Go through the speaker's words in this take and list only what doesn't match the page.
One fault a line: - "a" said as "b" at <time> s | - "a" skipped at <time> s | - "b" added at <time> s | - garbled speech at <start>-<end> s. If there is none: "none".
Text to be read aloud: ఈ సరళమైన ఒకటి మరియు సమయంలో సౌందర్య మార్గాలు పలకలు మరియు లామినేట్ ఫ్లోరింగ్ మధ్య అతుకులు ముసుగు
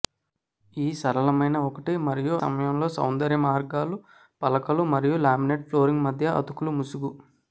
none